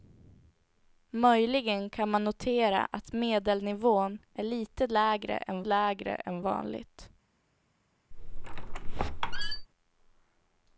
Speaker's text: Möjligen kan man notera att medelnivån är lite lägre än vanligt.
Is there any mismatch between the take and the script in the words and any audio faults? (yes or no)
yes